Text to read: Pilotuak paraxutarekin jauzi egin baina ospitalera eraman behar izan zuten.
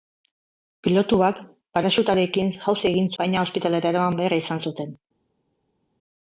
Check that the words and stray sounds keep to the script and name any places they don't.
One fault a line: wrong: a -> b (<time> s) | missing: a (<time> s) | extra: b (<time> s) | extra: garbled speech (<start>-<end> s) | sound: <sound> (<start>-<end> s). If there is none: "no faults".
no faults